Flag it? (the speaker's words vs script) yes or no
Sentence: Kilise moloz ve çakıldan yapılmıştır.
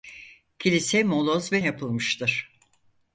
yes